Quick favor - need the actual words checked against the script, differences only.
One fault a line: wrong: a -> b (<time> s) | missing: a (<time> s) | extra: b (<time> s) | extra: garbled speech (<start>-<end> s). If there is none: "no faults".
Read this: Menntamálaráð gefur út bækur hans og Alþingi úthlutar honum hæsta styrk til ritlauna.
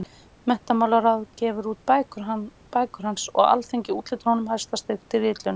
no faults